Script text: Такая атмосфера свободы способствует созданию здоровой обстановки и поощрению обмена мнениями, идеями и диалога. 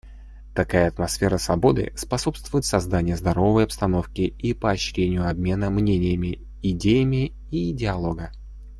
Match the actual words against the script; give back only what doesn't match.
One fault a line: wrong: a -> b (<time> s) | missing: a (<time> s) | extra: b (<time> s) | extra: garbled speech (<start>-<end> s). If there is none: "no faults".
no faults